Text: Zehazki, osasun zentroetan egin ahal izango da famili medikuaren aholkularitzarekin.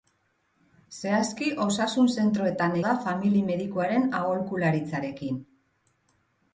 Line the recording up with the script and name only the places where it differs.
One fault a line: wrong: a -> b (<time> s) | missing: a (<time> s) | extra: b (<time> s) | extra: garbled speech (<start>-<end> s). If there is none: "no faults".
missing: egin ahal izango (2.8 s)